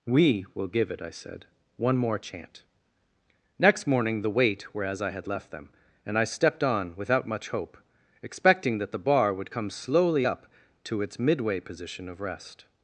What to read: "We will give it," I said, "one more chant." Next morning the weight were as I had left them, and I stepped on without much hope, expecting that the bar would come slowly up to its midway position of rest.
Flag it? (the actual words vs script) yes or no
no